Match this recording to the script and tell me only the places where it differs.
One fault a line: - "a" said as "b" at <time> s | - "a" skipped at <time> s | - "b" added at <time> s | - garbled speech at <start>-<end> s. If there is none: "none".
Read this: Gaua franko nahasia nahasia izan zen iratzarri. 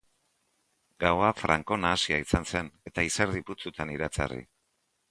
- "nahasia" skipped at 2.2 s
- "eta izerdi putzutan" added at 2.9 s